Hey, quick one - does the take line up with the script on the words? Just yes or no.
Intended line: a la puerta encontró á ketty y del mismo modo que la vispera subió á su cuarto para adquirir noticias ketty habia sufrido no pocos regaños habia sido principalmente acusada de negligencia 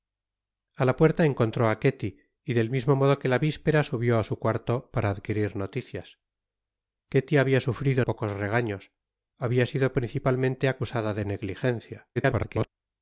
no